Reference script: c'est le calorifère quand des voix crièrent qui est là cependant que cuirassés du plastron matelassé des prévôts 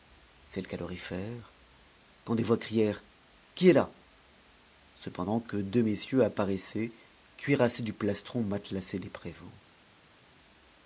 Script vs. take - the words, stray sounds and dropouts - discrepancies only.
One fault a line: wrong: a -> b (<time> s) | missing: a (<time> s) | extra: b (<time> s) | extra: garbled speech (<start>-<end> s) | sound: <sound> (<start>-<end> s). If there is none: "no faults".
extra: deux messieurs apparaissaient (5.6 s)